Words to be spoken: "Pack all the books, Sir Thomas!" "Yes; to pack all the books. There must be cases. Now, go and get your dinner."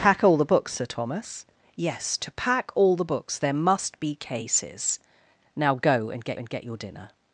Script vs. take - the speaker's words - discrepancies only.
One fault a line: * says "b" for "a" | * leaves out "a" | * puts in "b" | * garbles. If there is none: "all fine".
* puts in "and get"